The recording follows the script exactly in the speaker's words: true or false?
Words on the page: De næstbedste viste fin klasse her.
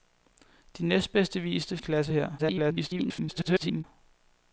false